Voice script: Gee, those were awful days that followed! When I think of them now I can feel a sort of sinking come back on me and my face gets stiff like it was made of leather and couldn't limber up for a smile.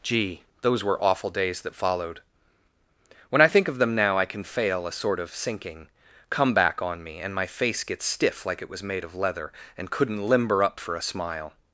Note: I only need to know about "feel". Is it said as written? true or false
false